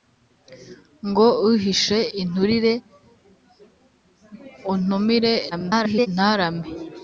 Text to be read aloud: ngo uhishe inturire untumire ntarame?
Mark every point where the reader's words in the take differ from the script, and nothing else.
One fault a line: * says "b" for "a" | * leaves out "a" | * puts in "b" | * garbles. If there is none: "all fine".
* garbles